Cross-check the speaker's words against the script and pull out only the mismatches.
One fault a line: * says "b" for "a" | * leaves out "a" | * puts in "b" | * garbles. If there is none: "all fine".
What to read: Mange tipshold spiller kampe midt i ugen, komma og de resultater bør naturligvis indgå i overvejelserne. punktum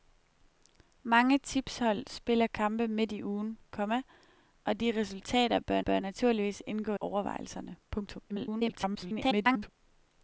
* puts in "bør"
* leaves out "i"
* garbles